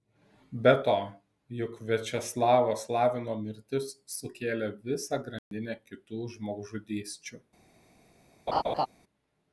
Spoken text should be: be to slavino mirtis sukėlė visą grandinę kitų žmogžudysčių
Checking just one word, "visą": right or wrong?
right